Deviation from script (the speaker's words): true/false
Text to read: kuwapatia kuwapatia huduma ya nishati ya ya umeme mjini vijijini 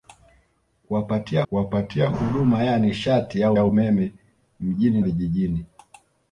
false